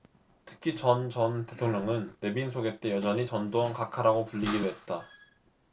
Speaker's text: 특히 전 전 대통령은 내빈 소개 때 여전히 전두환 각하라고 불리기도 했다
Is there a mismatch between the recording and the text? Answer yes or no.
no